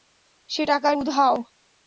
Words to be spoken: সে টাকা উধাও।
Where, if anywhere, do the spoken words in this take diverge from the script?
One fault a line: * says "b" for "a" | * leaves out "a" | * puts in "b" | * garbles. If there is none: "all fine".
all fine